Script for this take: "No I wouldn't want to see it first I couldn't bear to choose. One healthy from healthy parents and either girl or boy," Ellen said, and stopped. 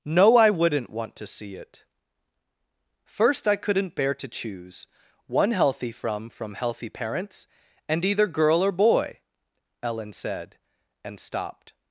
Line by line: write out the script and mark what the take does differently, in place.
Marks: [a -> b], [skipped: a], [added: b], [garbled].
"No I wouldn't want to see it first I couldn't bear to choose. One healthy from [added: from] healthy parents and either girl or boy," Ellen said, and stopped.